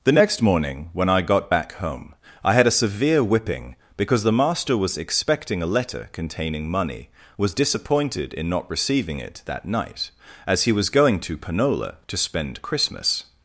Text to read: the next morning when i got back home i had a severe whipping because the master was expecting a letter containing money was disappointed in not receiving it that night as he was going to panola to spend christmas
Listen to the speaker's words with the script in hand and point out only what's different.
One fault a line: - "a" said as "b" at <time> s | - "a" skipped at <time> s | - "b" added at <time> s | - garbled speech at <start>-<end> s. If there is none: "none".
none